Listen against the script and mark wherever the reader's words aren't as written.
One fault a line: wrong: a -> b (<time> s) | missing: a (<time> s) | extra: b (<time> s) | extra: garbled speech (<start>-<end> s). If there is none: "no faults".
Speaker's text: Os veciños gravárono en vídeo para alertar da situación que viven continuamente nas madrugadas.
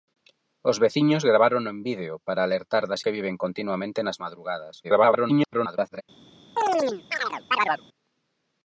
missing: situación (3.0 s)
extra: garbled speech (4.8-6.0 s)